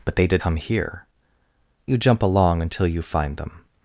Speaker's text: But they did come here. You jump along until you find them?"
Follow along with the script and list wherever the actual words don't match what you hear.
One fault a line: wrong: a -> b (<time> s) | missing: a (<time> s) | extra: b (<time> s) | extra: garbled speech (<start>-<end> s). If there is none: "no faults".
no faults